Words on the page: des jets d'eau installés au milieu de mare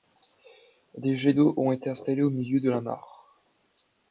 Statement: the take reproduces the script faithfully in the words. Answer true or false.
false